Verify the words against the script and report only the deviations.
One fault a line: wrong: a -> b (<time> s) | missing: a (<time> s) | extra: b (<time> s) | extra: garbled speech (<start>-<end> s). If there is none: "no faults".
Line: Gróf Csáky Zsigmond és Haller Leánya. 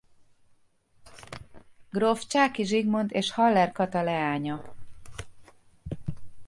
extra: Kata (3.7 s)